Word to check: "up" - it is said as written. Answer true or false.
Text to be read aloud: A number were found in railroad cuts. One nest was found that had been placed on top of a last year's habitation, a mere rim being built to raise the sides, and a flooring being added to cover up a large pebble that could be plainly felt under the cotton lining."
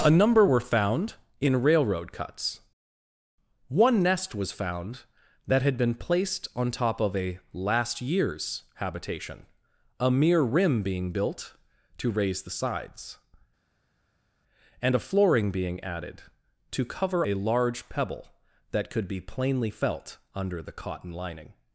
false